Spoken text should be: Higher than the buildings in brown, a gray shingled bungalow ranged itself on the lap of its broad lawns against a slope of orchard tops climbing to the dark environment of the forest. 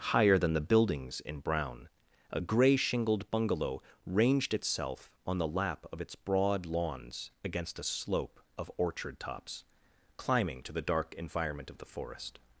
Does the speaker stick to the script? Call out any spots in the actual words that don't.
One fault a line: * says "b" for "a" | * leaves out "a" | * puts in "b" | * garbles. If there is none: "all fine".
all fine